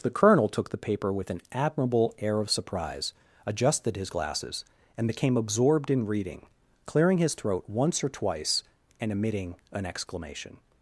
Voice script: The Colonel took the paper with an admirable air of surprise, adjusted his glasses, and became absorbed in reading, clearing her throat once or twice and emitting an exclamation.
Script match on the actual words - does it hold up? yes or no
no